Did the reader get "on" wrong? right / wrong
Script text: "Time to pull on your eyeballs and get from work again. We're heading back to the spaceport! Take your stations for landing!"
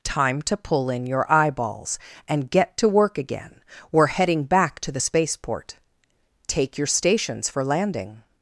wrong